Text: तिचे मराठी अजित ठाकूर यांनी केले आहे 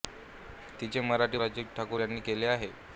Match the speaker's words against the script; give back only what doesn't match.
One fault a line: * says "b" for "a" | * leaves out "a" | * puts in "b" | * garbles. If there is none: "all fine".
all fine